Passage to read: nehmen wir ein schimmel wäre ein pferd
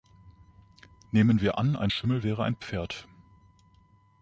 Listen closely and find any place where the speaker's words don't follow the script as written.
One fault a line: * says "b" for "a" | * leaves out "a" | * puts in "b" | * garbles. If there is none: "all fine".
* puts in "an"